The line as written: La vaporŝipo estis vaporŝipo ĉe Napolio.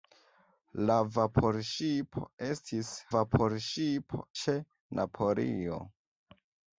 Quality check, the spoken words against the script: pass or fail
pass